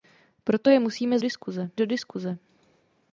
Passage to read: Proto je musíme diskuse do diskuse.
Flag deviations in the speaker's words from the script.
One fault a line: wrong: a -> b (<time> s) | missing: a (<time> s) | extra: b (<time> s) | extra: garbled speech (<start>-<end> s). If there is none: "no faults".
no faults